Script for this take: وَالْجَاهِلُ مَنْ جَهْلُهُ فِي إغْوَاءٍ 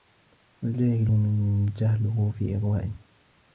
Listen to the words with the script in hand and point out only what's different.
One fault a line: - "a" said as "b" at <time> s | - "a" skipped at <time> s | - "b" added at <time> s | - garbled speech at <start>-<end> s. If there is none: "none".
none